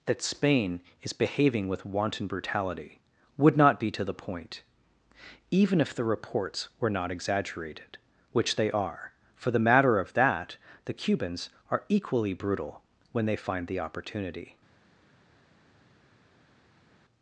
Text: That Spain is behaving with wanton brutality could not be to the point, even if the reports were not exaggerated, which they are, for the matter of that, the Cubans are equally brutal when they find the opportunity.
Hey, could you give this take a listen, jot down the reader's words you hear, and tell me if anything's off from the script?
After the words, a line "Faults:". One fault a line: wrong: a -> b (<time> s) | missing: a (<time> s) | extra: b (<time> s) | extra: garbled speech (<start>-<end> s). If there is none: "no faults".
That Spain is behaving with wanton brutality would not be to the point, even if the reports were not exaggerated, which they are, for the matter of that, the Cubans are equally brutal when they find the opportunity.
Faults:
wrong: could -> would (3.4 s)